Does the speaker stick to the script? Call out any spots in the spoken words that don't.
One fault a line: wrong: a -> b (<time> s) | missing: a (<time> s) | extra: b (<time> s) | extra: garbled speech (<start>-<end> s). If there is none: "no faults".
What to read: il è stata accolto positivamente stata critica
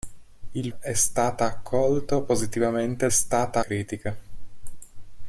no faults